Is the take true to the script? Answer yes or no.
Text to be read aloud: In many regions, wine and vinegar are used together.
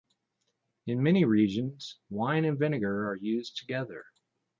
yes